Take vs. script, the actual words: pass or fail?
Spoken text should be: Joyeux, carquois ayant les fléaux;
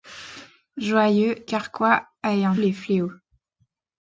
pass